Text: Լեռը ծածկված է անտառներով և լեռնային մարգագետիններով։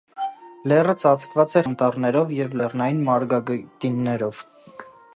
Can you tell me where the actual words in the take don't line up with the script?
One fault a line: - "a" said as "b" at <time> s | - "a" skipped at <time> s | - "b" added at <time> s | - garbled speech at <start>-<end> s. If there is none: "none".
none